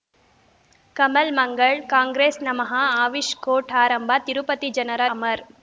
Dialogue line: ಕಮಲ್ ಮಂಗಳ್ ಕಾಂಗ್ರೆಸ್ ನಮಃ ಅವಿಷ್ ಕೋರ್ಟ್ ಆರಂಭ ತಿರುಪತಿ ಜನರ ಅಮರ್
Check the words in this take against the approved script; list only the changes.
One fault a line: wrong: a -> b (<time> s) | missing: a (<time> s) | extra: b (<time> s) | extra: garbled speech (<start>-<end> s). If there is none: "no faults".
no faults